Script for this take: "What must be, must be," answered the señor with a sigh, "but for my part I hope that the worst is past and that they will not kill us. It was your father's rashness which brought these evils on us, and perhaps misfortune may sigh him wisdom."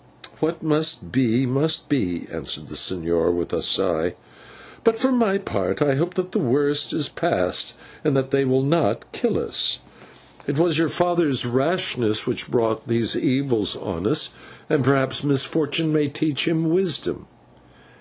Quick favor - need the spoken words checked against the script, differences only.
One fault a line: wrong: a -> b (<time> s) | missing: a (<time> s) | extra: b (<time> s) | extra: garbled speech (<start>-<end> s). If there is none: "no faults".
wrong: sigh -> teach (16.1 s)